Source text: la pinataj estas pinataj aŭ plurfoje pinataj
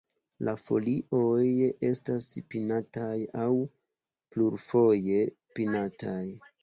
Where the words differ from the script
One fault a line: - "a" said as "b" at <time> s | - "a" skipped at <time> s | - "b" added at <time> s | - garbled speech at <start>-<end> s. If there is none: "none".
- "pinataj" said as "folioj" at 0.6 s